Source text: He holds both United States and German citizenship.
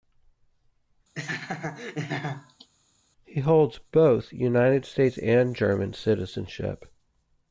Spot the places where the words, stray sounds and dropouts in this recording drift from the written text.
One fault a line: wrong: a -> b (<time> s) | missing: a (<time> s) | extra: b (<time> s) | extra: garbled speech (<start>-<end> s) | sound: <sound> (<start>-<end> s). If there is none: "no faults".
sound: laugh (1.1-2.7 s)